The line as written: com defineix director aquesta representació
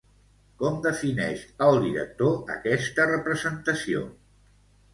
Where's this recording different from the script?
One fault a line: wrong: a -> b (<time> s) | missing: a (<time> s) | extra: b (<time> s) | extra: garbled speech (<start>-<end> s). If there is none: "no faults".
extra: el (1.7 s)